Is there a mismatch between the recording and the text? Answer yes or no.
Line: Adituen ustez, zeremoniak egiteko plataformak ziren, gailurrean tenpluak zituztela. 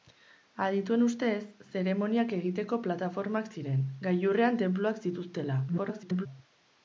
yes